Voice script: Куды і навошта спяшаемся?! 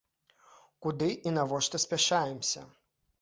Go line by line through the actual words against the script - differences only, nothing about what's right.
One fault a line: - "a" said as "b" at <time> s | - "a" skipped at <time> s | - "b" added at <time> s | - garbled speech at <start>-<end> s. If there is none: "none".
none